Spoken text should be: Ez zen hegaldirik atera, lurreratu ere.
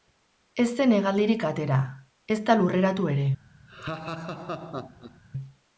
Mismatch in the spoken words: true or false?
true